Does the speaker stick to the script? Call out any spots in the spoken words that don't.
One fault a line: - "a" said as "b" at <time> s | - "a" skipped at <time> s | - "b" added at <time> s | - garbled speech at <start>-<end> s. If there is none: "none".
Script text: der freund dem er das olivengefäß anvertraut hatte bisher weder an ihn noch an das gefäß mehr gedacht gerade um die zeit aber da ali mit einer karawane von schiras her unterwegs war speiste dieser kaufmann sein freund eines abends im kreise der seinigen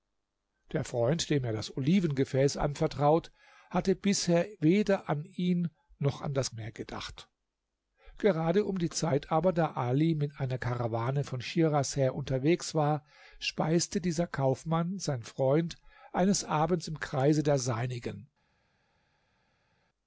- "gefäß" skipped at 6.5 s